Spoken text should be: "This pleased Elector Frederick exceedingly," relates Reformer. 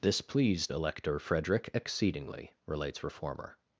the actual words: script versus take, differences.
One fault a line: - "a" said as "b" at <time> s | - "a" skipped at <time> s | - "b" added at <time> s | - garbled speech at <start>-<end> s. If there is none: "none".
none